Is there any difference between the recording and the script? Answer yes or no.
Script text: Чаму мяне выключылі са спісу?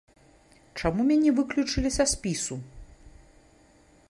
no